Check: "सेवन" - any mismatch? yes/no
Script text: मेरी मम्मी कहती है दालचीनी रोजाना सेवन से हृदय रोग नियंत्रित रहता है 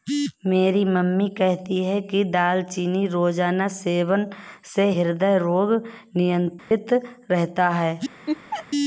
no